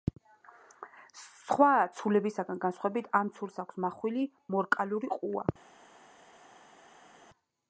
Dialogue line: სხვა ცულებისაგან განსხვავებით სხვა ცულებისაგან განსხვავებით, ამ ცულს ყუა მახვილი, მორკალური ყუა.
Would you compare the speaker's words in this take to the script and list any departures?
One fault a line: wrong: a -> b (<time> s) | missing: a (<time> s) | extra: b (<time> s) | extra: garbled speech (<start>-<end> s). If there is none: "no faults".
missing: სხვა ცულებისაგან განსხვავებით (3.1 s)
wrong: ყუა -> აქვს (3.6 s)